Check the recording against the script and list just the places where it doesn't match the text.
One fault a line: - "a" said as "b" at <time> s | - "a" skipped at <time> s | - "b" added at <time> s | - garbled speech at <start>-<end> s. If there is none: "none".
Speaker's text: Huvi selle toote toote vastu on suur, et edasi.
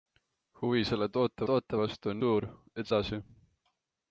none